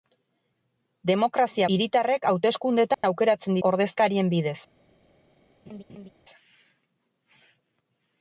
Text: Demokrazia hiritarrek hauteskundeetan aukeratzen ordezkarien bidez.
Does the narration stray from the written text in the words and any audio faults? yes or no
yes